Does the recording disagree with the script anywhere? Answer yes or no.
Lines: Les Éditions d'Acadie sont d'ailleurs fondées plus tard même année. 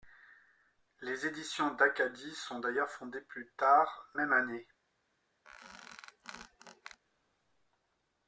no